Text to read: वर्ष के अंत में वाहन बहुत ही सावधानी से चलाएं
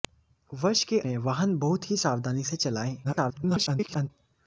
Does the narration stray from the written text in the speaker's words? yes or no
yes